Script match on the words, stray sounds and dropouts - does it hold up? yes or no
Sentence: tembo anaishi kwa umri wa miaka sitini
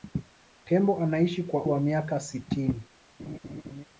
no